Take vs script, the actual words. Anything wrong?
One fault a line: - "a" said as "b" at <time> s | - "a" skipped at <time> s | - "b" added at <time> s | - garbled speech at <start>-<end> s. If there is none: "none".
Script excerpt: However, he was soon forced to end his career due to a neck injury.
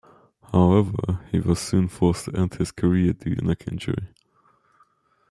- "to" skipped at 3.4 s